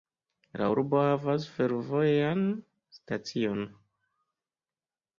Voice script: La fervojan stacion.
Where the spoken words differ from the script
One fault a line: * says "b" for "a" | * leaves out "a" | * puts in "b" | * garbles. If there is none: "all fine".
* puts in "urbo havas"